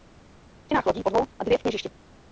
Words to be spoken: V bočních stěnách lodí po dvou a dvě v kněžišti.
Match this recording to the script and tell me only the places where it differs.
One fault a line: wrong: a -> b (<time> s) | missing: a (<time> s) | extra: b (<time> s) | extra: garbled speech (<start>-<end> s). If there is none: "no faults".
missing: bočních (0.7 s)